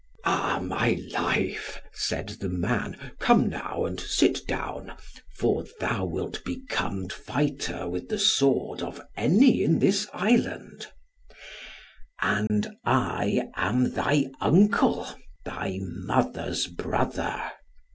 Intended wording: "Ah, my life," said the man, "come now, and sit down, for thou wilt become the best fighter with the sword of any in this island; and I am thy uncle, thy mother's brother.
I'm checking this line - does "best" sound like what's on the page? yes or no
no